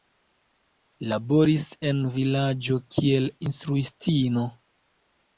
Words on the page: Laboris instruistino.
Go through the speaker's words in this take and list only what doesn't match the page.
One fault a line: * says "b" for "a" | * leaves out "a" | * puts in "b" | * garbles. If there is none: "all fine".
* puts in "en vilaĝo kiel"